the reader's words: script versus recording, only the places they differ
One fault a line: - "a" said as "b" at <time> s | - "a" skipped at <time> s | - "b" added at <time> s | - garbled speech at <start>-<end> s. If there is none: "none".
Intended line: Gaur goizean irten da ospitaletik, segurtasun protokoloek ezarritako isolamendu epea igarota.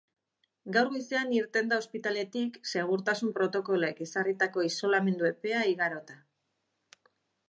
none